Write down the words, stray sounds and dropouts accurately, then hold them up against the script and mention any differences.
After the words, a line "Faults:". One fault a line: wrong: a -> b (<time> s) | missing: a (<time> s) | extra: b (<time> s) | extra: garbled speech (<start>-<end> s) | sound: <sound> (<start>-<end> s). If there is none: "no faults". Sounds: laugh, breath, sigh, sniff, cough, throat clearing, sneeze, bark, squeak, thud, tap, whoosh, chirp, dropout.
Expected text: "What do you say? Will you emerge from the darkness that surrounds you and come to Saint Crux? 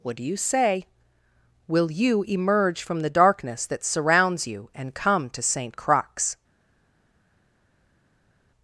"What do you say? Will you emerge from the darkness that surrounds you and come to Saint Crux?
Faults:
no faults